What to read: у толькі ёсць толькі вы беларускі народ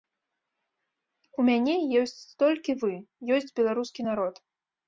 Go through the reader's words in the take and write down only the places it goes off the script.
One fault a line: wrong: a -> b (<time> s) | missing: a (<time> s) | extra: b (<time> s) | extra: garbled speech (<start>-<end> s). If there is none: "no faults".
wrong: толькі -> мяне (1.5 s)
extra: ёсць (3.4 s)